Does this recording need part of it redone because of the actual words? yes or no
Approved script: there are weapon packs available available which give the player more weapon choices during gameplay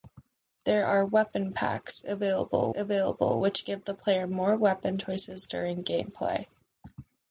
no